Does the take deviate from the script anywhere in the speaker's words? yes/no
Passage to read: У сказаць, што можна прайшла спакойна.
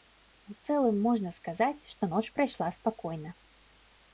yes